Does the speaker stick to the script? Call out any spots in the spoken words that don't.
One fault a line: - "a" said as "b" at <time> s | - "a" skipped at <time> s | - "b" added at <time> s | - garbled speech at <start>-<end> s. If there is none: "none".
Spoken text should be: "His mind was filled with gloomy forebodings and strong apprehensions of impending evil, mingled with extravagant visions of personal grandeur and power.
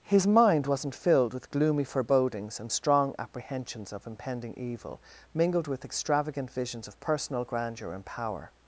- "was" said as "wasn't" at 0.7 s